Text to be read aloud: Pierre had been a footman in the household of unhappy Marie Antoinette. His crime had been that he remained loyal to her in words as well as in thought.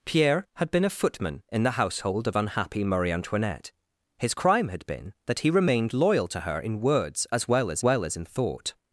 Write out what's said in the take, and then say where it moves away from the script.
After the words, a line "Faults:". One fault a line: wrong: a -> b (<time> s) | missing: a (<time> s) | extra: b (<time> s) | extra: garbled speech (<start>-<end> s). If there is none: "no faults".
Pierre had been a footman in the household of unhappy Marie Antoinette. His crime had been that he remained loyal to her in words as well as well as in thought.
Faults:
extra: well as (7.8 s)